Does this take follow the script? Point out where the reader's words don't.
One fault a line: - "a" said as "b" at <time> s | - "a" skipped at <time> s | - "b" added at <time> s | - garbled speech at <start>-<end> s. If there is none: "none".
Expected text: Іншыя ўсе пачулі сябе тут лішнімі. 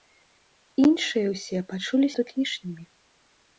- "сябе" skipped at 2.1 s